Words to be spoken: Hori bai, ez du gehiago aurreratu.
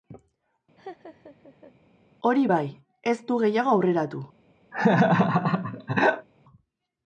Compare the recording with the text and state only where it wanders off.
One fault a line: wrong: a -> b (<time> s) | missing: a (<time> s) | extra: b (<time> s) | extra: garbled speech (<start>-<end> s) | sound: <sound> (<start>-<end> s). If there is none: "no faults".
sound: laugh (0.8-1.7 s)
sound: laugh (4.7-6.3 s)